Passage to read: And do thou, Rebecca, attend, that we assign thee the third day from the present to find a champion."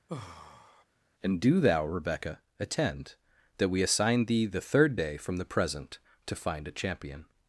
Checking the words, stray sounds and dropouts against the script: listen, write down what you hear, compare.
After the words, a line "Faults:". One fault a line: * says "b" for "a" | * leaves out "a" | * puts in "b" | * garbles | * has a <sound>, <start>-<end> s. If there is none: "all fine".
And do thou, Rebecca, attend, that we assign thee the third day from the present to find a champion."
Faults:
* has a sigh, 0.1-0.8 s